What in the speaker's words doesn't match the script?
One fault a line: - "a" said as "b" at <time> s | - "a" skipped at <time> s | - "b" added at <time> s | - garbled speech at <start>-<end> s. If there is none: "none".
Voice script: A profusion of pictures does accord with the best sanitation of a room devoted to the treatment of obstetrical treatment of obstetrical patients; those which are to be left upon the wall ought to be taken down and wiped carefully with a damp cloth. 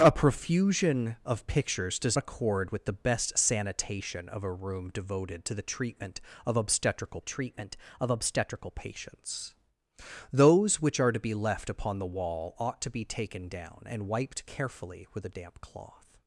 none